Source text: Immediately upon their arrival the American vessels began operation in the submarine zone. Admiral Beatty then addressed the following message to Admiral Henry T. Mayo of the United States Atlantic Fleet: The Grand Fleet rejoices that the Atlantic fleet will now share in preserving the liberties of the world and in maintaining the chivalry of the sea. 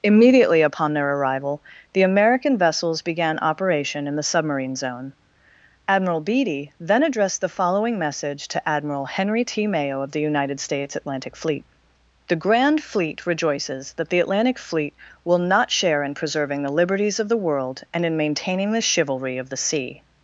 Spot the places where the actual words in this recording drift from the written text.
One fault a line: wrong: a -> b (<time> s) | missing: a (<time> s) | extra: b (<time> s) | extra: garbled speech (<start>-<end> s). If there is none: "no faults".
wrong: now -> not (15.4 s)